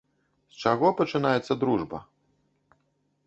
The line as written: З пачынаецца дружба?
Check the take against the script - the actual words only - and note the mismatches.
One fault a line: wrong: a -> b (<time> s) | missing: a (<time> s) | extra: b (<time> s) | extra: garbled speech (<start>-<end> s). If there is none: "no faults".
extra: чаго (0.7 s)